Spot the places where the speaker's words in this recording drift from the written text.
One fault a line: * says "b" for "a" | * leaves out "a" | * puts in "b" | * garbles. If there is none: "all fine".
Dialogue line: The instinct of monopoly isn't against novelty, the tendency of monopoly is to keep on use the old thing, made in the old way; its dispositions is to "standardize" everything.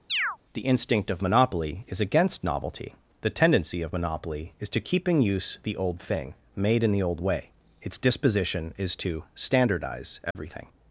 * says "is" for "isn't"
* says "in" for "on"
* says "disposition" for "dispositions"